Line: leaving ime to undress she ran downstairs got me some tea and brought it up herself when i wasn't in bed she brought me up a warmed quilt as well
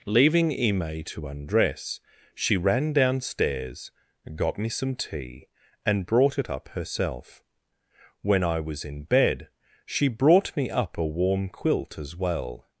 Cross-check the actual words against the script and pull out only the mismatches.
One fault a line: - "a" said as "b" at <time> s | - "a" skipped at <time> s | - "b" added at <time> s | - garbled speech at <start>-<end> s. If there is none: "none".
- "wasn't" said as "was" at 8.6 s
- "warmed" said as "warm" at 11.1 s